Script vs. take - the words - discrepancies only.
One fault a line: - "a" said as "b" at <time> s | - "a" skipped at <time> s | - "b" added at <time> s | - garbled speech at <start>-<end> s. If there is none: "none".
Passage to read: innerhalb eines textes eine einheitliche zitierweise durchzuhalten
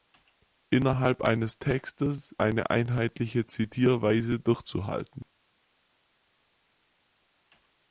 none